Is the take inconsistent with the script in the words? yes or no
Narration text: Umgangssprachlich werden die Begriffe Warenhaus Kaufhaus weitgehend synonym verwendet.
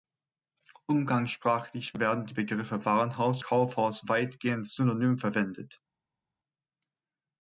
no